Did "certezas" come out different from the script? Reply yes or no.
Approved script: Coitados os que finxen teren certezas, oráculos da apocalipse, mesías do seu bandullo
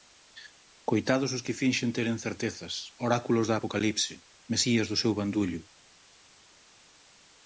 no